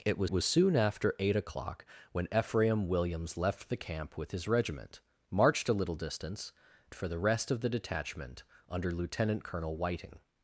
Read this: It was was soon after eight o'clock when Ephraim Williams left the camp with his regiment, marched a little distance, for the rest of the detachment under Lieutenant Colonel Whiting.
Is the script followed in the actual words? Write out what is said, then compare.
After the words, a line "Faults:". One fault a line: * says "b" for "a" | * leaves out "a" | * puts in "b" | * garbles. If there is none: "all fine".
It was was soon after eight o'clock when Ephraim Williams left the camp with his regiment, marched a little distance, for the rest of the detachment under Lieutenant Colonel Whiting.
Faults:
all fine